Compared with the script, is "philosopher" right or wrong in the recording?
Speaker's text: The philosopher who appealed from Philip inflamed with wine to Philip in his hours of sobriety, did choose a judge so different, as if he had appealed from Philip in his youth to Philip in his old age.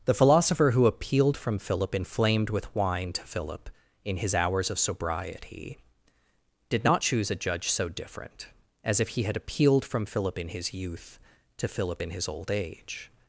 right